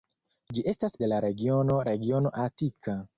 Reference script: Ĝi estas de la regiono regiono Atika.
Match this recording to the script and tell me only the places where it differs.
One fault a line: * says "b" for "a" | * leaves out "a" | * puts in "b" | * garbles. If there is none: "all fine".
all fine